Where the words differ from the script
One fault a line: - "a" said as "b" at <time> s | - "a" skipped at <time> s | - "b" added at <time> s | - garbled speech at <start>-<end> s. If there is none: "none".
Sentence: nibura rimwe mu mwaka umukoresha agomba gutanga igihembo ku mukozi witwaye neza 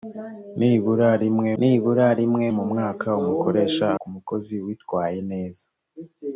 - "nibura rimwe" added at 1.6 s
- "agomba gutanga igihembo" skipped at 3.9 s